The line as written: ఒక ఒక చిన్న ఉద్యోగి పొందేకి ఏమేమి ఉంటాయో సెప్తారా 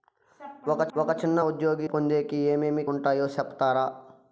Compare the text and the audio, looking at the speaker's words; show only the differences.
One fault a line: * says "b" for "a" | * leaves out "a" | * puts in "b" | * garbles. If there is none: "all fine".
all fine